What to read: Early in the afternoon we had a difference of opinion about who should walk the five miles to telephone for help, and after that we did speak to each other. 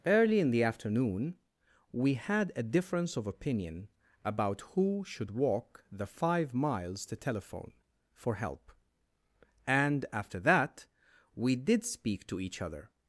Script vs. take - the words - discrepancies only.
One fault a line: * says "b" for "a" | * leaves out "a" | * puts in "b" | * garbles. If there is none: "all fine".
all fine